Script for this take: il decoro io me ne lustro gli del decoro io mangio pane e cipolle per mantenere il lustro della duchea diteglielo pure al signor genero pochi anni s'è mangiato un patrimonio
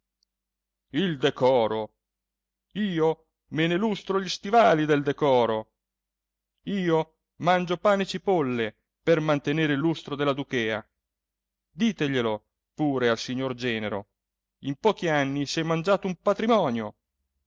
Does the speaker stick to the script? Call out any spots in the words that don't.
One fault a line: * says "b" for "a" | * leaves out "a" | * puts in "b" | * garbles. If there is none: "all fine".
* puts in "stivali"
* puts in "in"